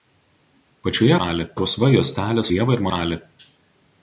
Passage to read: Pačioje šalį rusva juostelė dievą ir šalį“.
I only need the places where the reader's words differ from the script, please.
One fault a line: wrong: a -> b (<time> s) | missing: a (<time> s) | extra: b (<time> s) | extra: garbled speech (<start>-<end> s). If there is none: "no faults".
no faults